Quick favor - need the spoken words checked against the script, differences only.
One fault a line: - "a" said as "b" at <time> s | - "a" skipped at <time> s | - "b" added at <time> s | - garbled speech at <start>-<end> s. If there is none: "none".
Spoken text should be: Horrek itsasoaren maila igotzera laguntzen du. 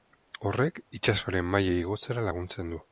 none